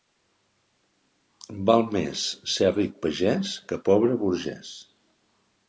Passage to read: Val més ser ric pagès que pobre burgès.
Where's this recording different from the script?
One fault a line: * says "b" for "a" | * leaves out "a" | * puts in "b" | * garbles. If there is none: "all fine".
all fine